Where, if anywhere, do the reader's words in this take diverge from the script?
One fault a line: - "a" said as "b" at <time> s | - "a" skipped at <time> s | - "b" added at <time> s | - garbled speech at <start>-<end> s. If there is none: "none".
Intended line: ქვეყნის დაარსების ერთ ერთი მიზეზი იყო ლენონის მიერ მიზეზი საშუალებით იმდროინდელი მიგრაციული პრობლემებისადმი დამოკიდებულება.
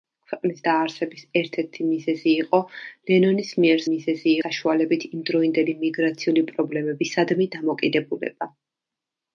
none